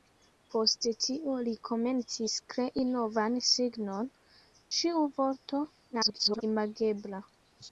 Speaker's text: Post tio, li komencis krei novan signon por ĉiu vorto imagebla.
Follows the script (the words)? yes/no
no